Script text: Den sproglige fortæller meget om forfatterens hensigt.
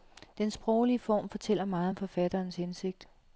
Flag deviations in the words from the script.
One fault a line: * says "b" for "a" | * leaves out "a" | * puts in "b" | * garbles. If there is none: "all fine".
* puts in "form"